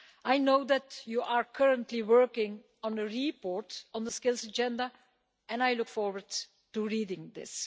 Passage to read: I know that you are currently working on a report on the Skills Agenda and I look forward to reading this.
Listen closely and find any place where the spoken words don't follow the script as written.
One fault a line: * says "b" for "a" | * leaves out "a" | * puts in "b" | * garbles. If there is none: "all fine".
all fine